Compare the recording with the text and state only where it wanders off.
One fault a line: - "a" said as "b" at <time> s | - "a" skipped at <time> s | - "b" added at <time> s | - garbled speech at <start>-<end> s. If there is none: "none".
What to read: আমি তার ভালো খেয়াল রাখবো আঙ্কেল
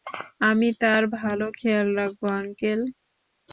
none